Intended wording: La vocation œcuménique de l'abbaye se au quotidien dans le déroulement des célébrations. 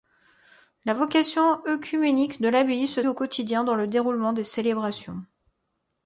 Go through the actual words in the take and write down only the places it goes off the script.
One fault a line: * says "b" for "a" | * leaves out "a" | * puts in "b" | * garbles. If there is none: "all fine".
all fine